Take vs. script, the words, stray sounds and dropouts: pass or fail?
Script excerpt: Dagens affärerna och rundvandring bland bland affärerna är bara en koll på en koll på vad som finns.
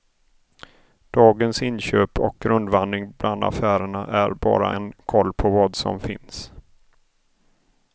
fail